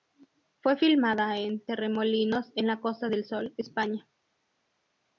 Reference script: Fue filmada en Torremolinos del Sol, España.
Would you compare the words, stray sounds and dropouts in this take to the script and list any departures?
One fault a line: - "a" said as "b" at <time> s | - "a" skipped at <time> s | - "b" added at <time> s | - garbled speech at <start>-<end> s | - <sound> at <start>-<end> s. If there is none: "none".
- "en la Costa" added at 2.5 s